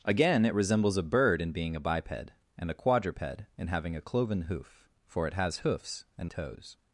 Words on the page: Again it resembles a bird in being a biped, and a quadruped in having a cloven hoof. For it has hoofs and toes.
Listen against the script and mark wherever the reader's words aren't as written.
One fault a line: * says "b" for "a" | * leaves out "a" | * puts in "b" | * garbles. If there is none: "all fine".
all fine